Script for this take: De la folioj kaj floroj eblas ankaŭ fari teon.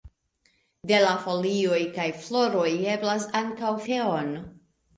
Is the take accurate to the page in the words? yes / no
no